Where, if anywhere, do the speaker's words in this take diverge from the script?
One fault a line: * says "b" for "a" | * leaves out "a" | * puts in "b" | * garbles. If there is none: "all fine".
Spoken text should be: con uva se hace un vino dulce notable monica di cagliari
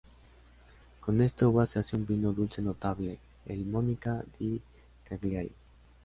* puts in "esta"
* puts in "el"